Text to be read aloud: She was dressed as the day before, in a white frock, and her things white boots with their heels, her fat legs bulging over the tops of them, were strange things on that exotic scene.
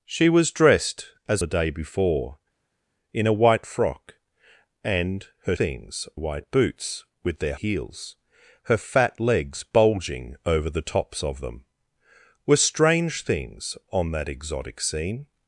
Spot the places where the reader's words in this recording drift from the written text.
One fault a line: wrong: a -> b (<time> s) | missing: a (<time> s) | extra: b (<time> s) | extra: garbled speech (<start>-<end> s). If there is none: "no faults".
no faults